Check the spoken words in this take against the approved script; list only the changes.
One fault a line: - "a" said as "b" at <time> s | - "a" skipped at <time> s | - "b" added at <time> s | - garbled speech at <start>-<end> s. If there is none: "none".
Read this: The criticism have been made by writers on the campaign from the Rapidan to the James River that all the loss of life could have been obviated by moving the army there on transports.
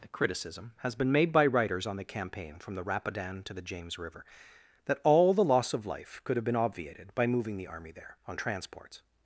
- "have" said as "has" at 0.8 s